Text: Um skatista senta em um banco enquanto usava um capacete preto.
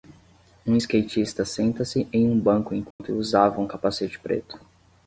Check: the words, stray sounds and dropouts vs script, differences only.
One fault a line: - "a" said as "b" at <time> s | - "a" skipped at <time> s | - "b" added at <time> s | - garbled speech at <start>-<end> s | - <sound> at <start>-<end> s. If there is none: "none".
- "se" added at 1.8 s
- dropout at 2.9-3.0 s